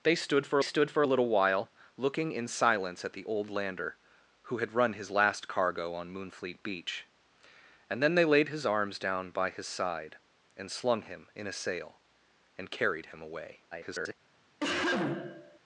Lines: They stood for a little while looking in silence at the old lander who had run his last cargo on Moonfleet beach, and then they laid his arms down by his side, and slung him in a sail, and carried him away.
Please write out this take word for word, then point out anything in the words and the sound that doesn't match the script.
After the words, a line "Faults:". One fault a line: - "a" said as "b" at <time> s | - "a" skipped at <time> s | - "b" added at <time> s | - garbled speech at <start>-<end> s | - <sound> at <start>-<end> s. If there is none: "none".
They stood for stood for a little while looking in silence at the old lander who had run his last cargo on Moonfleet beach, and then they laid his arms down by his side, and slung him in a sail, and carried him away. [garbled]
Faults:
- "stood for" added at 0.6 s
- garbled speech at 13.7-14.1 s
- cough at 14.6-15.6 s